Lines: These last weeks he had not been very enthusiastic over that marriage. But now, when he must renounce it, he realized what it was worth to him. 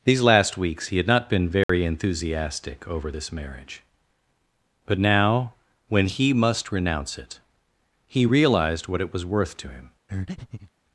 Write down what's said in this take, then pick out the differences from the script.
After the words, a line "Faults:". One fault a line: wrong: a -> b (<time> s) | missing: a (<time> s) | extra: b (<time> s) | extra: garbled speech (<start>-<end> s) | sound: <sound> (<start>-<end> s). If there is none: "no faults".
These last weeks he had not been very enthusiastic over this marriage. But now, when he must renounce it, he realized what it was worth to him.
Faults:
sound: dropout (1.6-1.7 s)
wrong: that -> this (3.1 s)
sound: breath (10.1-10.7 s)